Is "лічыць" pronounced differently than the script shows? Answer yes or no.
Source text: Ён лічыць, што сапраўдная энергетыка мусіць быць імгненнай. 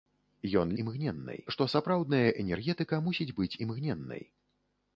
yes